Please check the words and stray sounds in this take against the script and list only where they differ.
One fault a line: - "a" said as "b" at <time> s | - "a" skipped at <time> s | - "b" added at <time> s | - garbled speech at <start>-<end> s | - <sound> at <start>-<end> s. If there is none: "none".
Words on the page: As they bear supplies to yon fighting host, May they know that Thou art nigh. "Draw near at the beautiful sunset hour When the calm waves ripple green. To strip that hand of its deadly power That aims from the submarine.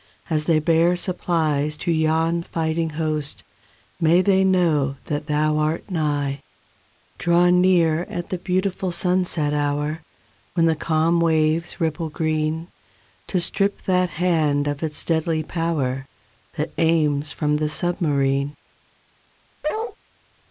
- bark at 19.6-20.0 s